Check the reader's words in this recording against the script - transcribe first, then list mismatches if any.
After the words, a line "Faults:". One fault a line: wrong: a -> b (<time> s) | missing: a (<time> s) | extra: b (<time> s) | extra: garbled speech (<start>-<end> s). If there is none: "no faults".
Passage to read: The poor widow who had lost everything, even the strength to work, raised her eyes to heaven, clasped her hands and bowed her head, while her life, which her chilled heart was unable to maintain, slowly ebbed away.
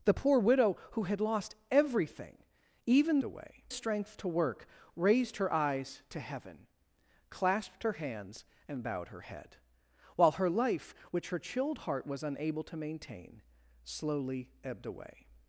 The poor widow who had lost everything, even away strength to work, raised her eyes to heaven, clasped her hands and bowed her head, while her life, which her chilled heart was unable to maintain, slowly ebbed away.
Faults:
wrong: the -> away (3.2 s)